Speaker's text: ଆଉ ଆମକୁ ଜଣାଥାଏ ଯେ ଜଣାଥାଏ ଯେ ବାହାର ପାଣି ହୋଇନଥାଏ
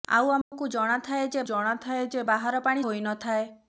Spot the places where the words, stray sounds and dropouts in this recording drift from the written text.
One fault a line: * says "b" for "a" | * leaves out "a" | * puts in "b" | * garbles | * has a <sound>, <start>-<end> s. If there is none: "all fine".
* has a dropout, 0.4-0.5 s